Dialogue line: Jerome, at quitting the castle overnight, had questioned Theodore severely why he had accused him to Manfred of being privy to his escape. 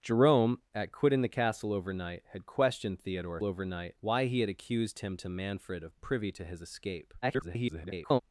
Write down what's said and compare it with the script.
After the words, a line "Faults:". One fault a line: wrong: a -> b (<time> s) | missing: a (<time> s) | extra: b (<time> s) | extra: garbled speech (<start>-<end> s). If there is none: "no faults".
Jerome, at quitting the castle overnight, had questioned Theodore overnight why he had accused him to Manfred of privy to his escape. [garbled]
Faults:
wrong: severely -> overnight (3.4 s)
missing: being (6.0 s)
extra: garbled speech (7.2-8.2 s)